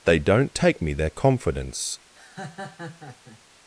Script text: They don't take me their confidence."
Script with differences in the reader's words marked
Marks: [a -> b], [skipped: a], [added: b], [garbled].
They don't take me their confidence."